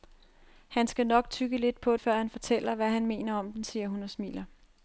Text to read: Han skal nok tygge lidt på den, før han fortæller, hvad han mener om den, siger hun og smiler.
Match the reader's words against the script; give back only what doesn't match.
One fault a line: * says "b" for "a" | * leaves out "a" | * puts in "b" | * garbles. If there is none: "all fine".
* leaves out "den"